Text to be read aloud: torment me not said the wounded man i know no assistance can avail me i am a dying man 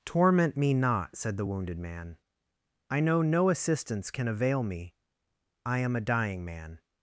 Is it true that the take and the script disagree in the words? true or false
false